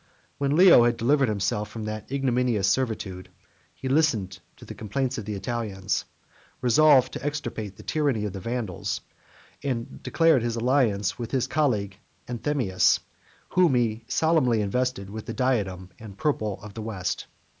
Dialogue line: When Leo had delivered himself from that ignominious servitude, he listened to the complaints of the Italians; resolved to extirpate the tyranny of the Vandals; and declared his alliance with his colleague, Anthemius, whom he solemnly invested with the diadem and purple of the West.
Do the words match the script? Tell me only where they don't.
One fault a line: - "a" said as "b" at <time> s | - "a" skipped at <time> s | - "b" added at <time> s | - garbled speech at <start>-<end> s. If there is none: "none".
none